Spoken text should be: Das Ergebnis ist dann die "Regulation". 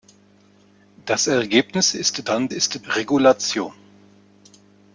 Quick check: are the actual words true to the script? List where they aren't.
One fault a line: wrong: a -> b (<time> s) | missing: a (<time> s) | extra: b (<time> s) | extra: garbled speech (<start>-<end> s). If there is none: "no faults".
wrong: die -> ist (2.5 s)